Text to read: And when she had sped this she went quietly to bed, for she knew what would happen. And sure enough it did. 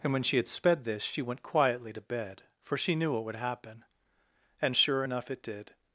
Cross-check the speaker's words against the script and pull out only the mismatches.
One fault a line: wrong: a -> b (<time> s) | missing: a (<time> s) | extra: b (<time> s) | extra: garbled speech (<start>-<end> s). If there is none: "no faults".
no faults